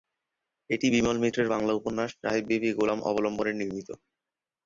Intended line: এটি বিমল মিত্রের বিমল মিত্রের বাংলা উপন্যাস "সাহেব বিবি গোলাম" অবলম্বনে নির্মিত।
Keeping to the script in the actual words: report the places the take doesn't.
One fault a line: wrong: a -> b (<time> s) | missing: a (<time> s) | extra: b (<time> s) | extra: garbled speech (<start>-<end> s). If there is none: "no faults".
missing: বিমল মিত্রের (1.5 s)